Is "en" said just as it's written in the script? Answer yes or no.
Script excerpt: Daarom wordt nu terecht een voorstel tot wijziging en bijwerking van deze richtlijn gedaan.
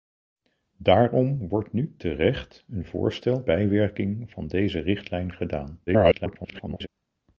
no